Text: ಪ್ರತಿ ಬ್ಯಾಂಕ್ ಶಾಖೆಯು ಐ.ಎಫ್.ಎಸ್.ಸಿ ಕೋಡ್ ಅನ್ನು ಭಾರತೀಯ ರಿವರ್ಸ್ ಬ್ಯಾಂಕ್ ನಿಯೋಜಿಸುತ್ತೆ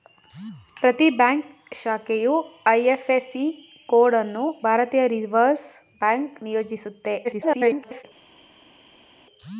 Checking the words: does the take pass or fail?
fail